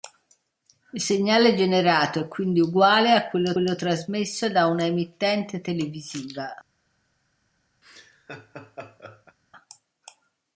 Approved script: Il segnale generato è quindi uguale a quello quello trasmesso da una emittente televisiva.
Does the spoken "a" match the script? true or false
true